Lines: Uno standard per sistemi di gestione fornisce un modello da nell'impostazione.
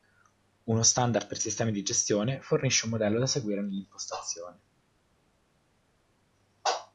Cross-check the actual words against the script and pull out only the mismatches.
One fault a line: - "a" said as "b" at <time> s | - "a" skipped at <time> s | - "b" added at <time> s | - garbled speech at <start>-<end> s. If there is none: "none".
- "seguire" added at 3.3 s